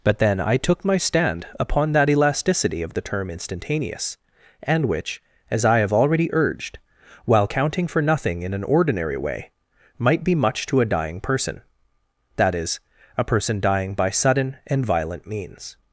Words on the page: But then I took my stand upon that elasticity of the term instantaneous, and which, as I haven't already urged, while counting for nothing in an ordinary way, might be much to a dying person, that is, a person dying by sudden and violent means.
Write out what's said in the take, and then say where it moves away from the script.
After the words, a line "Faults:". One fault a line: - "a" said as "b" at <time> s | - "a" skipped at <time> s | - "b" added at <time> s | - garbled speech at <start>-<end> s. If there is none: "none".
But then I took my stand upon that elasticity of the term instantaneous, and which, as I have already urged, while counting for nothing in an ordinary way, might be much to a dying person, that is, a person dying by sudden and violent means.
Faults:
- "haven't" said as "have" at 5.8 s